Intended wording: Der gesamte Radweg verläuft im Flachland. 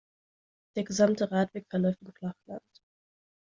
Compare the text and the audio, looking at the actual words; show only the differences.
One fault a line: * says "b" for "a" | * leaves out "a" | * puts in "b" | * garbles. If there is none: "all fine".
all fine